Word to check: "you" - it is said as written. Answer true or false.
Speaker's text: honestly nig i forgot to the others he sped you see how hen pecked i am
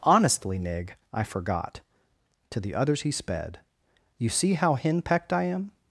true